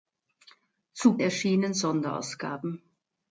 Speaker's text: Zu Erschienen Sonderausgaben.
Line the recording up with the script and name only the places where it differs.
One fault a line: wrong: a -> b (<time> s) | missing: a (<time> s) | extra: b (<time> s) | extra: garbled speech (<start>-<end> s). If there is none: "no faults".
no faults